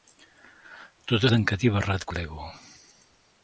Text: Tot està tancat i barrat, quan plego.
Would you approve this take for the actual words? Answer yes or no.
no